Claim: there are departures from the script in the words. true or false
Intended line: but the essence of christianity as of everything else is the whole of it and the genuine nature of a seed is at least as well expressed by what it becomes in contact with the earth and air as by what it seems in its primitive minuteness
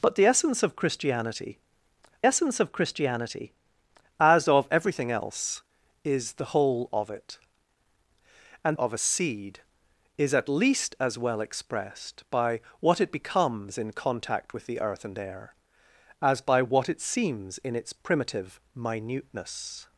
true